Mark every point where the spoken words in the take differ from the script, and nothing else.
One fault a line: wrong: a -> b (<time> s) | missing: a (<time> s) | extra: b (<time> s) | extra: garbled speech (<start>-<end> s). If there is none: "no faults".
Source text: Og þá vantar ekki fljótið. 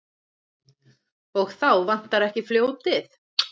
no faults